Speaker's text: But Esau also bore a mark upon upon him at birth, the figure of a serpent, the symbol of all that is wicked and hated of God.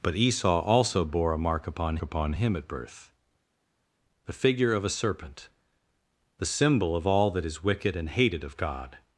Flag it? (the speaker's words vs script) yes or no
no